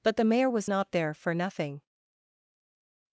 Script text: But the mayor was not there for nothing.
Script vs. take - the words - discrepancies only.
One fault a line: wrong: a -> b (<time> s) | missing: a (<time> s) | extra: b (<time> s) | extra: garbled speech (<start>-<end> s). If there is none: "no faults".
no faults